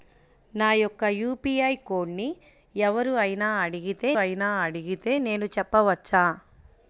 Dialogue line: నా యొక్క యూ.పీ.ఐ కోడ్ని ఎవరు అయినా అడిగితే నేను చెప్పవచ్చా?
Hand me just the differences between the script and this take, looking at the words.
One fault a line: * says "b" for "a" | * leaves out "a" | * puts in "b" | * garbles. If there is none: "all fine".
* puts in "అయినా అడిగితే"